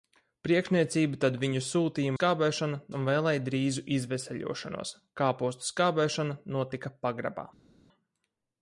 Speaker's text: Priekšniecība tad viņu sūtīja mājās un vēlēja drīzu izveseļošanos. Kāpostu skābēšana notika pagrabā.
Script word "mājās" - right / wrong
wrong